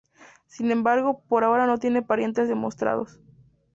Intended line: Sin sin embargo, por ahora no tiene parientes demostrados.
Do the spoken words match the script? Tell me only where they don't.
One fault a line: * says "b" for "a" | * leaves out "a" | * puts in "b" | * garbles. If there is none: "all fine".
* leaves out "sin"